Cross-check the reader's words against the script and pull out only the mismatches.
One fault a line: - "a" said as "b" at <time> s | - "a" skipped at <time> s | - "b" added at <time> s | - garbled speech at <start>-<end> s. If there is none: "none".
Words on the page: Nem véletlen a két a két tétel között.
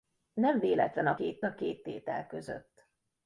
none